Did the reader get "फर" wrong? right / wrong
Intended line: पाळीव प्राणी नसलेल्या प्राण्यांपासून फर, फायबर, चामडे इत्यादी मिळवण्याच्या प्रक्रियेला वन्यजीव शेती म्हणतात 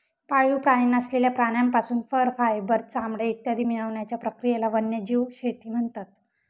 right